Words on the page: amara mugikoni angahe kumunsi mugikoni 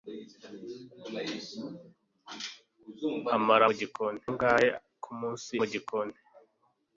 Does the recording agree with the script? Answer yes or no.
yes